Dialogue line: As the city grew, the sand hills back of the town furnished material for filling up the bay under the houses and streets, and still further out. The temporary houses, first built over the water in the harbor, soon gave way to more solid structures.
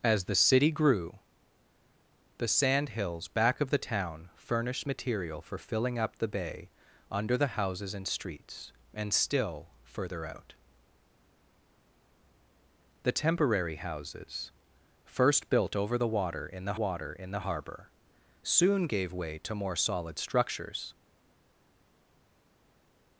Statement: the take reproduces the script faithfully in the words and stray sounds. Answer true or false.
false